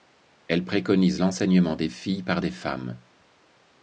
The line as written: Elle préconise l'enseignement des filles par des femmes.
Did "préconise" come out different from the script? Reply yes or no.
no